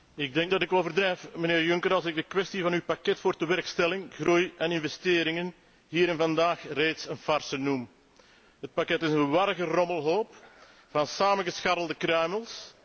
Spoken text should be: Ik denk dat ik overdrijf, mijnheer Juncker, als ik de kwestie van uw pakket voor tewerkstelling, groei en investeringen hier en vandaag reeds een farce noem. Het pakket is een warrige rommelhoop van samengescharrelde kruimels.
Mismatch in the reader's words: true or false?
false